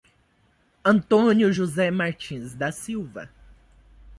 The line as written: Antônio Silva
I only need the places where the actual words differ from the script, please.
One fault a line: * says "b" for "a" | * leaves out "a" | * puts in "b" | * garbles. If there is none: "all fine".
* puts in "José Martins da"